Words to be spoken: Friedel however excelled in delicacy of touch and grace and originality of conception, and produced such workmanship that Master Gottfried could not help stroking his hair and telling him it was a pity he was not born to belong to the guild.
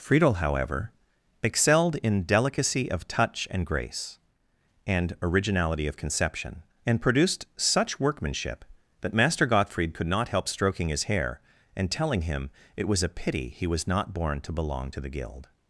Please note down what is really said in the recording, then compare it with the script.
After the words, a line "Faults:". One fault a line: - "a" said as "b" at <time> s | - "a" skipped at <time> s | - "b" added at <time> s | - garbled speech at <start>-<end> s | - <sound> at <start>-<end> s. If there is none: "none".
Friedel however excelled in delicacy of touch and grace and originality of conception, and produced such workmanship that Master Gottfried could not help stroking his hair and telling him it was a pity he was not born to belong to the guild.
Faults:
none